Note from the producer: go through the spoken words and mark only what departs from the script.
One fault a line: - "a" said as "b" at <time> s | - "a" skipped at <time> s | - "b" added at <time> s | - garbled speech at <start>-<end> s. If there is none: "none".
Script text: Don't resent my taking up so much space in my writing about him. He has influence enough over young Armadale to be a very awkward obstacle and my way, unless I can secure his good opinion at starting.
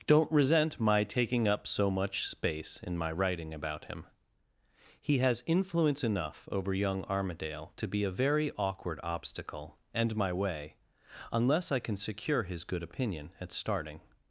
none